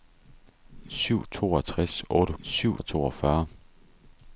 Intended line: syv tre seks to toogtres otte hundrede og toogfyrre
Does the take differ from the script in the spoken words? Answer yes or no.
yes